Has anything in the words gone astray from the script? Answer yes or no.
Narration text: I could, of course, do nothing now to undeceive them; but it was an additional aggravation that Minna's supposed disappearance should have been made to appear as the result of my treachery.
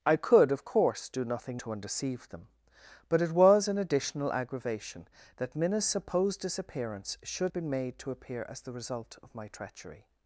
yes